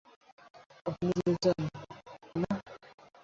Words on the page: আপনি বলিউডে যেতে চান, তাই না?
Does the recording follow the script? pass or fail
fail